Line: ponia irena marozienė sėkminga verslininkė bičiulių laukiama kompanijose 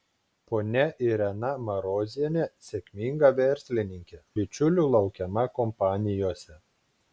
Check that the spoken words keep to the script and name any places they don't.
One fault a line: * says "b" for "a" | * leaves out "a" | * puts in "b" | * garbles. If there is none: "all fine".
all fine